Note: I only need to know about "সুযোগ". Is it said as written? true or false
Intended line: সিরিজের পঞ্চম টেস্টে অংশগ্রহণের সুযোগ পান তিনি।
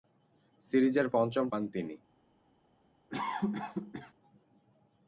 false